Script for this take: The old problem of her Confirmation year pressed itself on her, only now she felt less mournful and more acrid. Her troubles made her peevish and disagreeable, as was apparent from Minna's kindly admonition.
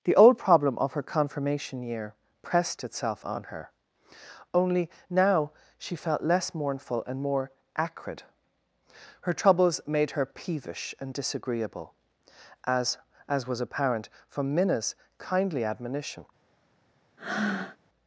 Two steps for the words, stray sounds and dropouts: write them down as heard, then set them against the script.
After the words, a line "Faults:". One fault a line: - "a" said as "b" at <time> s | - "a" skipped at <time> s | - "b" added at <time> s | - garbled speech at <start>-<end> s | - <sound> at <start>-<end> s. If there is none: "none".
The old problem of her Confirmation year pressed itself on her, only now she felt less mournful and more acrid. Her troubles made her peevish and disagreeable, as as was apparent from Minna's kindly admonition.
Faults:
- "as" added at 13.3 s
- breath at 17.2-17.8 s